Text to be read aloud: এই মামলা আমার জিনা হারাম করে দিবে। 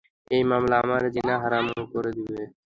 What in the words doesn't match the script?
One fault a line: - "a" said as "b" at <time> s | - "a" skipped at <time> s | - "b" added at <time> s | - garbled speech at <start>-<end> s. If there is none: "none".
none